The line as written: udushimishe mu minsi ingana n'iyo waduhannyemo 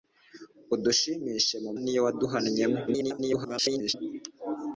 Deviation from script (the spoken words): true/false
true